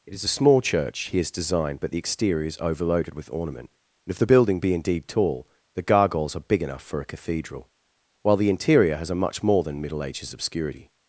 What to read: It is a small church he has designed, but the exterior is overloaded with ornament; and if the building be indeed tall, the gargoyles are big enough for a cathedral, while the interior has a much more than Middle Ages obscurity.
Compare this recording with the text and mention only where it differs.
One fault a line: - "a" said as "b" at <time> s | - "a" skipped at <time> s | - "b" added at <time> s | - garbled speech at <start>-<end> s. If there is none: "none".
none